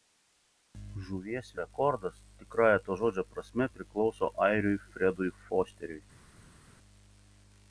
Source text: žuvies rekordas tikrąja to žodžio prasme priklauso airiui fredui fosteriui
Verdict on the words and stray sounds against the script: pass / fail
pass